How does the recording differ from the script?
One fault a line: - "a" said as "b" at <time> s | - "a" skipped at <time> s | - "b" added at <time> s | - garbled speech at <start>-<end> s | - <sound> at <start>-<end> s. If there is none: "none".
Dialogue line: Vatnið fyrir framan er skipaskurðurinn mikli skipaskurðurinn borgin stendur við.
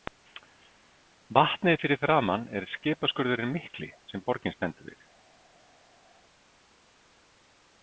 - "skipaskurðurinn" said as "sem" at 4.1 s